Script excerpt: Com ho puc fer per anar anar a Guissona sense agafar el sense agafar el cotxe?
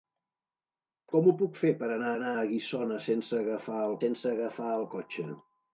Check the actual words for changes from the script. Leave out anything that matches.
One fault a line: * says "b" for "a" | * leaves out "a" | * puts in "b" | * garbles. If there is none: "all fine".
all fine